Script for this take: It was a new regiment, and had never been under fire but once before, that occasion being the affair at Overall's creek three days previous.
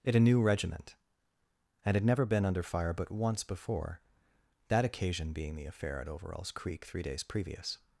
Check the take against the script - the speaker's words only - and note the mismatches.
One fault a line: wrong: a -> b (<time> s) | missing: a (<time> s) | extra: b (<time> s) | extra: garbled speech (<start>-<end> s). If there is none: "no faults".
missing: was (0.1 s)